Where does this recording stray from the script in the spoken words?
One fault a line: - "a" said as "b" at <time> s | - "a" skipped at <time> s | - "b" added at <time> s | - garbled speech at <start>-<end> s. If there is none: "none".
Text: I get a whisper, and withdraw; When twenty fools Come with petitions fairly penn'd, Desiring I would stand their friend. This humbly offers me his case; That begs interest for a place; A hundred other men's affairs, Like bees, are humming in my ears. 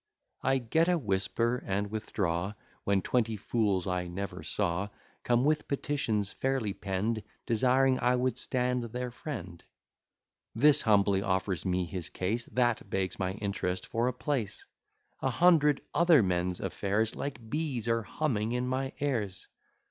- "I never saw" added at 3.9 s
- "my" added at 13.2 s